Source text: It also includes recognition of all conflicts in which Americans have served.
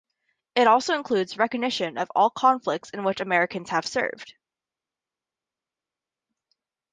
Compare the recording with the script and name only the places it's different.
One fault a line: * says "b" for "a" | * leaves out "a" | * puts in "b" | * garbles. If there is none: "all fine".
all fine